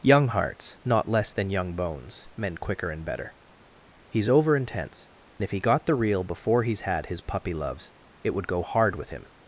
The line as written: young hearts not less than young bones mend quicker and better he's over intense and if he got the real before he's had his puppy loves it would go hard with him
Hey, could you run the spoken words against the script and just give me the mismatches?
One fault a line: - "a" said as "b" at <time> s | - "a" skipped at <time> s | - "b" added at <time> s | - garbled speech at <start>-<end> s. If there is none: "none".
- "and" skipped at 5.1 s